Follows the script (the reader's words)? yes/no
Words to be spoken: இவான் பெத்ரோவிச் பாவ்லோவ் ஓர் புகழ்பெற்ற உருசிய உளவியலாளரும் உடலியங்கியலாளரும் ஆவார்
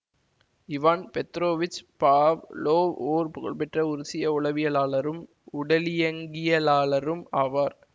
yes